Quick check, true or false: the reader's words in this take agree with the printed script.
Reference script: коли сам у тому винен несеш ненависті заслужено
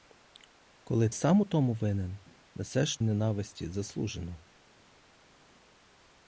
true